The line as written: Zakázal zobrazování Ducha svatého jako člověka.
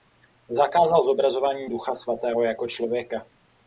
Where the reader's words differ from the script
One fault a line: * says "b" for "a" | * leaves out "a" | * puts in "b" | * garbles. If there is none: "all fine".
all fine